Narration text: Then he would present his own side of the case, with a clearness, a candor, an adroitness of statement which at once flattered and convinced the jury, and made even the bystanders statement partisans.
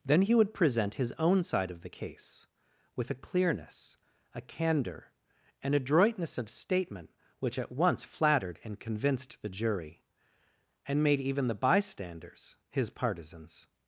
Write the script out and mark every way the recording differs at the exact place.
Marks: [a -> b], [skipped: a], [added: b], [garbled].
Then he would present his own side of the case, with a clearness, a candor, an adroitness of statement which at once flattered and convinced the jury, and made even the bystanders [statement -> his] partisans.